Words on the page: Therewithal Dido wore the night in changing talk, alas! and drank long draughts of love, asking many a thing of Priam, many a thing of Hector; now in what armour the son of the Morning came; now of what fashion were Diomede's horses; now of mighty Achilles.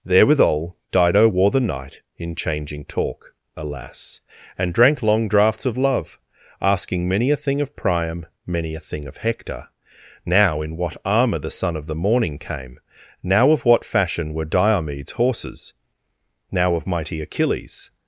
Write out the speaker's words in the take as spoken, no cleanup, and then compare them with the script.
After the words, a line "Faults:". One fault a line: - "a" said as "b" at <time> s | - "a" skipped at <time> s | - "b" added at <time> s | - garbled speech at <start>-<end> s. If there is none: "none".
Therewithal Dido wore the night in changing talk, alas! and drank long draughts of love, asking many a thing of Priam, many a thing of Hector; now in what armour the son of the Morning came; now of what fashion were Diomede's horses; now of mighty Achilles.
Faults:
none